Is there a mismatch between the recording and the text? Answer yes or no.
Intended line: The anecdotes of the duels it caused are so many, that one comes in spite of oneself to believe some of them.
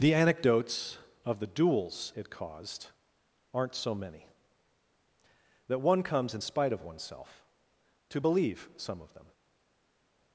yes